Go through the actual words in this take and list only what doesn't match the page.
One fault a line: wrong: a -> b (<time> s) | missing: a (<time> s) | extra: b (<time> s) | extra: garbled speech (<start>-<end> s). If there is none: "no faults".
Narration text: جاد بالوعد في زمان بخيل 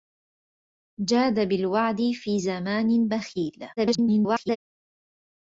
extra: garbled speech (3.8-4.6 s)